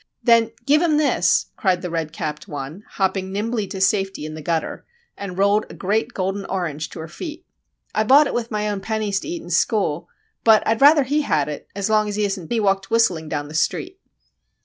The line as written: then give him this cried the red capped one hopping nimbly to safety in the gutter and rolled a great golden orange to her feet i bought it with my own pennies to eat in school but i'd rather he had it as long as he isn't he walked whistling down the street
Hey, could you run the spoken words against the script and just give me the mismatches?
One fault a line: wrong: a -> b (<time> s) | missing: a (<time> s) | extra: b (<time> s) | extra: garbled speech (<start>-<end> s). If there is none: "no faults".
no faults